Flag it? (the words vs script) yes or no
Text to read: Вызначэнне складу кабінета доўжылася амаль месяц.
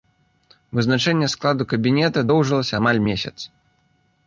no